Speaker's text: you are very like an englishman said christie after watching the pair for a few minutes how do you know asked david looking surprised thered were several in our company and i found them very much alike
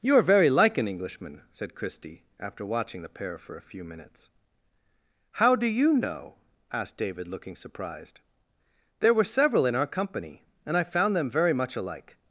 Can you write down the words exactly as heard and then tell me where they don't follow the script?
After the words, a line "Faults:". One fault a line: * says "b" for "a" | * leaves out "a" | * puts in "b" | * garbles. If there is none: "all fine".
you are very like an englishman said christie after watching the pair for a few minutes how do you know asked david looking surprised there were several in our company and i found them very much alike
Faults:
* says "there" for "thered"